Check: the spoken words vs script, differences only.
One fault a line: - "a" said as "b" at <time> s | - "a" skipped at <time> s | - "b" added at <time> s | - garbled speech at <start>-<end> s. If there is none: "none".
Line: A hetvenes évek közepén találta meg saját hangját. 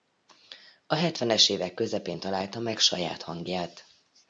none